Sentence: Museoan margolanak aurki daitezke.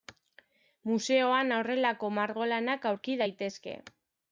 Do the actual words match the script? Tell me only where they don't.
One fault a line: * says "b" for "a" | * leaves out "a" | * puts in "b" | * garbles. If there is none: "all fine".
* puts in "horrelako"